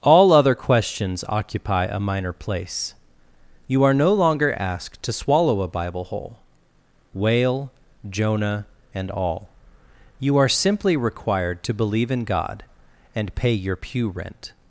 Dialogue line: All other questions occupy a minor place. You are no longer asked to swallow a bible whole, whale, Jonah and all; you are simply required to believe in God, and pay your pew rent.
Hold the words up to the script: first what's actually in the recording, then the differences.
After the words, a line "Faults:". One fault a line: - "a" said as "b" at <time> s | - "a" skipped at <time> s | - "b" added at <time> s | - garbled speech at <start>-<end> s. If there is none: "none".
All other questions occupy a minor place. You are no longer asked to swallow a bible whole, whale, Jonah and all; you are simply required to believe in God, and pay your pew rent.
Faults:
none